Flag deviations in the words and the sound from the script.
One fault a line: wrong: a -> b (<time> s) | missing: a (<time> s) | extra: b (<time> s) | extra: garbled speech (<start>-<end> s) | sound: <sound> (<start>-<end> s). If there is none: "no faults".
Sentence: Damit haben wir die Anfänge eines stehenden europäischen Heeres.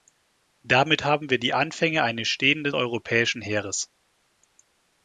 no faults